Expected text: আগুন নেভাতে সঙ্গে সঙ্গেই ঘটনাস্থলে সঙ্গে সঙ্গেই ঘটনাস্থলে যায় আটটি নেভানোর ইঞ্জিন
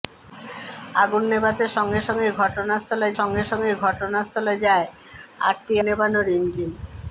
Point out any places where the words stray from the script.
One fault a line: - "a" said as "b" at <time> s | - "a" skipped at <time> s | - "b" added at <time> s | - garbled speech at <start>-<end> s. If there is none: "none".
none